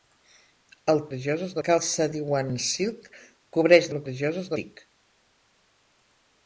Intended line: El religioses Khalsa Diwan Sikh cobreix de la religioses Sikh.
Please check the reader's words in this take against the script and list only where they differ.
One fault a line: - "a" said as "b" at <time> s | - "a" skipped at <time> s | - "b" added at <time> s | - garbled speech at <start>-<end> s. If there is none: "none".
none